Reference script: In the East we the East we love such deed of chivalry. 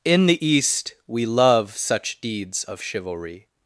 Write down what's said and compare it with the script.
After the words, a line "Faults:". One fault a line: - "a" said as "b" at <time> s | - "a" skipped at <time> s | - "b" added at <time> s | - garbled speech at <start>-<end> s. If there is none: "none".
In the East we love such deeds of chivalry.
Faults:
- "the East we" skipped at 1.2 s
- "deed" said as "deeds" at 2.2 s